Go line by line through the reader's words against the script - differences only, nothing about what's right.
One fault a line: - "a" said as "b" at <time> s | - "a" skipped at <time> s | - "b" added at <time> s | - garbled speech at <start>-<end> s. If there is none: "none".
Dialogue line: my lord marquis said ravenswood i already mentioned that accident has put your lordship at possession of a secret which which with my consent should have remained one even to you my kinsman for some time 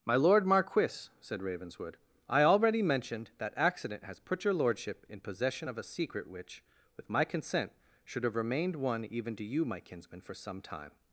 - "at" said as "in" at 5.1 s
- "which" skipped at 6.6 s